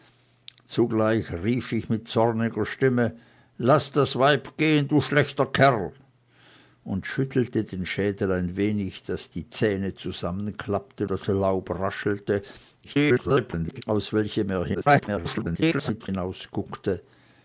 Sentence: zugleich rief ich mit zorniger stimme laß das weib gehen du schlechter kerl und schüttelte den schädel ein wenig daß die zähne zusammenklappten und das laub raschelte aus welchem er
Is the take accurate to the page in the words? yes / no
no